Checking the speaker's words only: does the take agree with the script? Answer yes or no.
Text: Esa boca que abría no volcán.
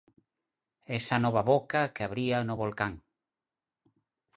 no